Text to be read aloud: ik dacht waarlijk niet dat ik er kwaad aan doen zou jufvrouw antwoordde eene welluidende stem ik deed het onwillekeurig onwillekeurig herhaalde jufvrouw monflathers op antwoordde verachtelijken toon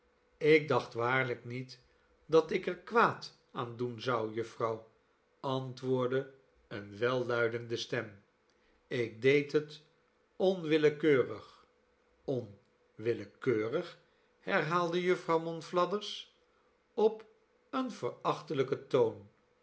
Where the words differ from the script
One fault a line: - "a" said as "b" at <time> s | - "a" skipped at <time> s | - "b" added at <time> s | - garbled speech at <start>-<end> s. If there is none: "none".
- "antwoordde" said as "een" at 17.7 s